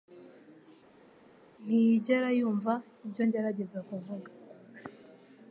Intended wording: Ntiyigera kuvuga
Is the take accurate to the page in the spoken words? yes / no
no